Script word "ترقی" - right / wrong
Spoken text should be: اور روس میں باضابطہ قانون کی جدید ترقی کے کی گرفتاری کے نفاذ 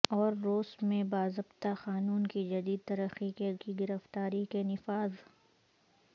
right